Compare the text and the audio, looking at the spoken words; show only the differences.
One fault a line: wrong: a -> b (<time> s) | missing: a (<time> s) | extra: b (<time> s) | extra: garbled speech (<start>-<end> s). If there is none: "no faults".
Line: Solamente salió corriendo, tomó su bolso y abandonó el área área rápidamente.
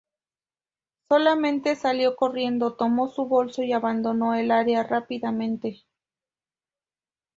missing: área (4.8 s)